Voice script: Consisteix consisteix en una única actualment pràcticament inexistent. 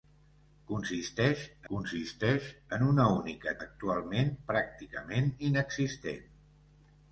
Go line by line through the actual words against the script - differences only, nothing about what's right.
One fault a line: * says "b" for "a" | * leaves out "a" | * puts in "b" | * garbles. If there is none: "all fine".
all fine